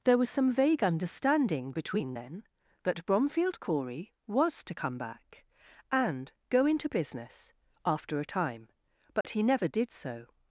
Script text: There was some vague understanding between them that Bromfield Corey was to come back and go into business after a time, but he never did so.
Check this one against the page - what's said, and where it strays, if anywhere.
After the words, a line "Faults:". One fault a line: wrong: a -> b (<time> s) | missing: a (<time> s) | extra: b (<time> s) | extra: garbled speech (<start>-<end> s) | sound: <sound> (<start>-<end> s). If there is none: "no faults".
There was some vague understanding between then that Bromfield Corey was to come back and go into business after a time, but he never did so.
Faults:
wrong: them -> then (2.1 s)
sound: dropout (9.2-9.2 s)